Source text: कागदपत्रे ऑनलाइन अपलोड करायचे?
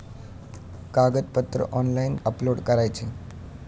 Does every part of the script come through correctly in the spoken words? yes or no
yes